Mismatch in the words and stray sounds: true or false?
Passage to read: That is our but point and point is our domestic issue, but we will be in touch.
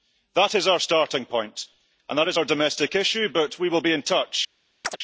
true